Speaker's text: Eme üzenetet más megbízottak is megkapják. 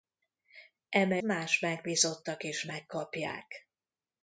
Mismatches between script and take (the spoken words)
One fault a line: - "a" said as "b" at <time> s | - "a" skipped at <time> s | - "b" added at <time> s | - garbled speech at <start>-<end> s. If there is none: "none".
- "üzenetet" skipped at 1.2 s